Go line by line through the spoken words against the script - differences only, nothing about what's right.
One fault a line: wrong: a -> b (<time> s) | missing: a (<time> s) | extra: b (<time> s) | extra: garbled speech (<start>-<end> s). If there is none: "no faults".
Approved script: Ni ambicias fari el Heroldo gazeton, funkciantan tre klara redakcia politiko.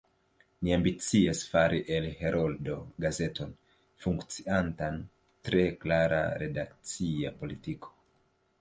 no faults